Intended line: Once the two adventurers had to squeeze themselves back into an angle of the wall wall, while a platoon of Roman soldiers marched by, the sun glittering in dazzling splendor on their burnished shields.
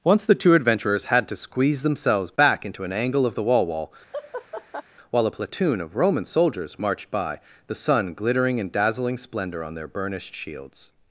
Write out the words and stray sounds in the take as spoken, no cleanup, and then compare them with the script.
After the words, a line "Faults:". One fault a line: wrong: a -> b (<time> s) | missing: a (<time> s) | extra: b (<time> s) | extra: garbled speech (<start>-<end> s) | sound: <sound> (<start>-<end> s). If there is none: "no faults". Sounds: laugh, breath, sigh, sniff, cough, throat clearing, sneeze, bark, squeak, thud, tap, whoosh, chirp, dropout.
Once the two adventurers had to squeeze themselves back into an angle of the wall wall, while a platoon of Roman soldiers marched by, the sun glittering in dazzling splendor on their burnished shields.
Faults:
sound: laugh (4.1-4.8 s)